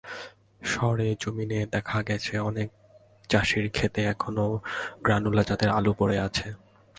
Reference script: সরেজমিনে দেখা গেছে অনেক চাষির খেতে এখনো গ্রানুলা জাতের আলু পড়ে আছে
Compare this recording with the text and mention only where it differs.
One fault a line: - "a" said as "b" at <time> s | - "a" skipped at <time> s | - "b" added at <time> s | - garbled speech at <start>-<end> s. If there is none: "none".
none